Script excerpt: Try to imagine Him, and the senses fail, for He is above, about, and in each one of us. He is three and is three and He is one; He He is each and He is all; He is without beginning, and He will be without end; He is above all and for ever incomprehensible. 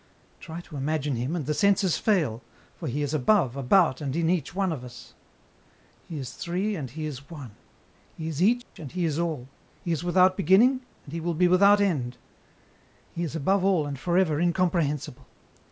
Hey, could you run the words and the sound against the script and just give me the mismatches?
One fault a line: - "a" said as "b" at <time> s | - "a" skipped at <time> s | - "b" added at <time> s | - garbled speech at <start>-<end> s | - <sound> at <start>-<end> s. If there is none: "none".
- "is three and" skipped at 6.9 s
- "He" skipped at 8.3 s
- dropout at 8.6-8.8 s